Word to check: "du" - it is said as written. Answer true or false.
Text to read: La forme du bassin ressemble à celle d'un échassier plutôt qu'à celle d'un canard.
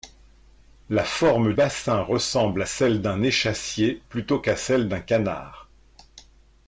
false